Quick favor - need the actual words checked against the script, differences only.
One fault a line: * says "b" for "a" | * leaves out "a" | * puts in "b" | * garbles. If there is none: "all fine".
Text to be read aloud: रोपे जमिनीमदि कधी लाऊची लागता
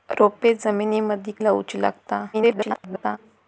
* leaves out "कधी"
* garbles